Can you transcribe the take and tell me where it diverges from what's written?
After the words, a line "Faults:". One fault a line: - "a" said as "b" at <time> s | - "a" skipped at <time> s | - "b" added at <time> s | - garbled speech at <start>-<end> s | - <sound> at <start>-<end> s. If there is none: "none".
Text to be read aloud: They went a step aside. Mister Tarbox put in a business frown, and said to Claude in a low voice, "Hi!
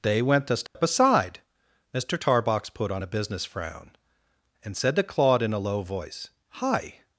They went a step aside. Mister Tarbox put on a business frown, and said to Claude in a low voice, "Hi!
Faults:
- dropout at 0.7-0.7 s
- "in" said as "on" at 2.9 s